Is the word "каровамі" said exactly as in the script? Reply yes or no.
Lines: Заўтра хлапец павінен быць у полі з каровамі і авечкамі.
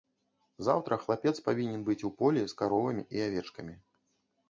yes